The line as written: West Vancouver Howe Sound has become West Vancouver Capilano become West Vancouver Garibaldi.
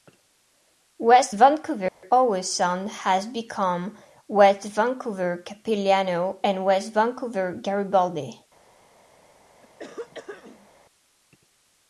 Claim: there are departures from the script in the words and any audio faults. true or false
true